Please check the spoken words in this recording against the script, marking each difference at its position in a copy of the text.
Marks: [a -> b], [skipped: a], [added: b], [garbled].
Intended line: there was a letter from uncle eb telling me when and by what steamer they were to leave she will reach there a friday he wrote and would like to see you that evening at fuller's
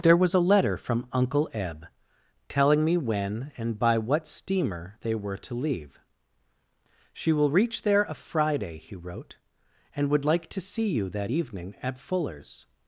there was a letter from uncle eb telling me when and by what steamer they were to leave she will reach there a friday he wrote and would like to see you that evening at fuller's